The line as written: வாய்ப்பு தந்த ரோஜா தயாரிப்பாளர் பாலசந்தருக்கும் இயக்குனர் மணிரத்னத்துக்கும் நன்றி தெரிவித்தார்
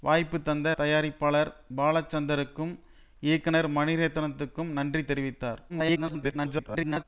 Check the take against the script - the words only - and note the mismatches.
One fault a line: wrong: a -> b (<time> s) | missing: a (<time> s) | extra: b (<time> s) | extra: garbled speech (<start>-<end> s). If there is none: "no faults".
missing: ரோஜா (0.7 s)
extra: garbled speech (5.7-7.0 s)